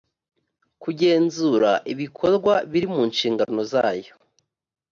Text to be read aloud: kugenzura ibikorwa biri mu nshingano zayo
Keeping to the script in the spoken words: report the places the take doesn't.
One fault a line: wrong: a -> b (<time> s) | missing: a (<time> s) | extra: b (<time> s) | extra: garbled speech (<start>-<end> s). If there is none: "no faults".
no faults